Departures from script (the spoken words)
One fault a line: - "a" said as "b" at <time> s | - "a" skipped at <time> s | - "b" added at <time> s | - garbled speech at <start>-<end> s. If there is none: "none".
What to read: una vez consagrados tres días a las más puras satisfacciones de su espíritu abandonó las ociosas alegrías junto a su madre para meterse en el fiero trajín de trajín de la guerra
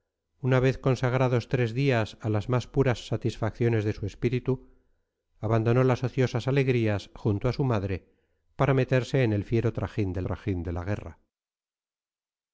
none